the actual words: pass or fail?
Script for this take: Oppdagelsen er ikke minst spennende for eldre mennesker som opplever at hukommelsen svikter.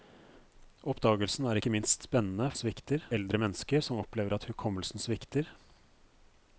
fail